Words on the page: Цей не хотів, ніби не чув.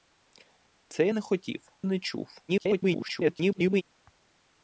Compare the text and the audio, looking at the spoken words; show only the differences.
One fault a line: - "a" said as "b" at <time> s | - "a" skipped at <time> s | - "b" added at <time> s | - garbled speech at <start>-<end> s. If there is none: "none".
- "ніби" skipped at 1.7 s
- garbled speech at 2.5-3.8 s